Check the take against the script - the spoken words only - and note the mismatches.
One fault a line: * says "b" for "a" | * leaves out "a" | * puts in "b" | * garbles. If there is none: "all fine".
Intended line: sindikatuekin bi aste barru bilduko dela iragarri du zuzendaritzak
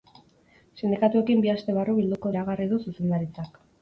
* leaves out "dela"